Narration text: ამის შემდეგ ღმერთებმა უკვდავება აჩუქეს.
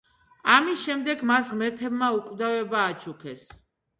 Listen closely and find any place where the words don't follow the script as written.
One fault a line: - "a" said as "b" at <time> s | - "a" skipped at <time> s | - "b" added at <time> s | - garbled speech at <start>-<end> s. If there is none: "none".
- "მას" added at 1.3 s